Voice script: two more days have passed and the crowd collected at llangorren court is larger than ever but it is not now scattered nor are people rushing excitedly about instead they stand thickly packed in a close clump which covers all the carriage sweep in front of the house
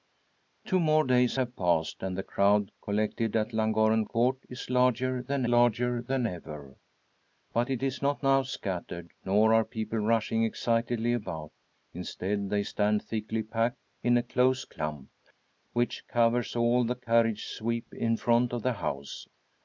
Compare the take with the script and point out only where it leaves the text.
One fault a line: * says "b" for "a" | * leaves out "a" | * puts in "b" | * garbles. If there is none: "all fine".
* puts in "larger than"